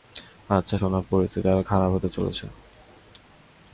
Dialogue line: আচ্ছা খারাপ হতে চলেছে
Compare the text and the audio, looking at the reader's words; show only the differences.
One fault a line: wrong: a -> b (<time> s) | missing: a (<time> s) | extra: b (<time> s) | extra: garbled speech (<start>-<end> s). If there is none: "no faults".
extra: সোনা পরিস্থিতি আরো (0.7 s)